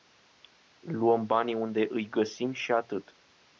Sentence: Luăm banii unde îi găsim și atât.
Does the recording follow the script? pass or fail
pass